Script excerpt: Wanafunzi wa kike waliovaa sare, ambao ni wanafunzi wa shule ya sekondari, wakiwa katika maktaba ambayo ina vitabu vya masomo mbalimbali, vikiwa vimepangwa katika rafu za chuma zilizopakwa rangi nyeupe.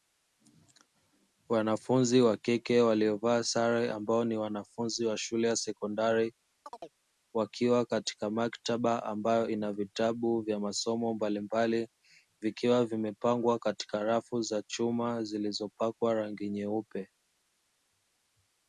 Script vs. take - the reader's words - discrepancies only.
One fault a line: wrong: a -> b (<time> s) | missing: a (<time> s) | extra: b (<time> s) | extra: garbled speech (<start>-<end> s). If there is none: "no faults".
no faults